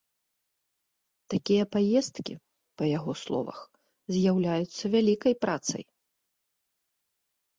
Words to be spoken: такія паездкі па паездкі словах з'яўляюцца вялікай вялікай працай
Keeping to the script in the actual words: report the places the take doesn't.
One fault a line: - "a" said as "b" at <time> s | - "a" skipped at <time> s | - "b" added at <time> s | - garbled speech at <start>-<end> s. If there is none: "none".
- "паездкі" said as "яго" at 3.0 s
- "вялікай" skipped at 5.3 s